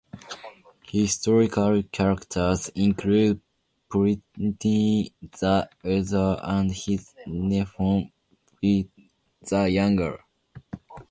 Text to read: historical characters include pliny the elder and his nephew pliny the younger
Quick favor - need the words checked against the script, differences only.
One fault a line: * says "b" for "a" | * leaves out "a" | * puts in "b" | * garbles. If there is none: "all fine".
all fine